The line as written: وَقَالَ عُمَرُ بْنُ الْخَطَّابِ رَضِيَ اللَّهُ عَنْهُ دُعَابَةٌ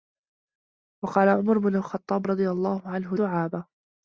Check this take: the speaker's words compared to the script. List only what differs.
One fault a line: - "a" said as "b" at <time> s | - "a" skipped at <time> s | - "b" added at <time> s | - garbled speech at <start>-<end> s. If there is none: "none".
none